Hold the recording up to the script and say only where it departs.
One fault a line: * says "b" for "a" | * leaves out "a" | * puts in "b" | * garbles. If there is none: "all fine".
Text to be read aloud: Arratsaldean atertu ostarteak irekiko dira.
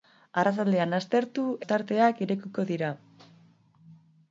all fine